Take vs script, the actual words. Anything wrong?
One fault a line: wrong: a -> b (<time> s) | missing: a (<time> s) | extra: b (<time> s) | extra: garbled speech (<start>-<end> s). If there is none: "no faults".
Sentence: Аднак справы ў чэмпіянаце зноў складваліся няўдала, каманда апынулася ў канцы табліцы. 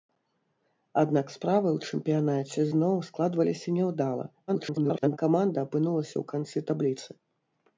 extra: garbled speech (4.5-5.2 s)